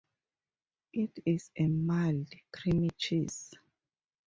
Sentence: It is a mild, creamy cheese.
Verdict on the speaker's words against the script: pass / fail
pass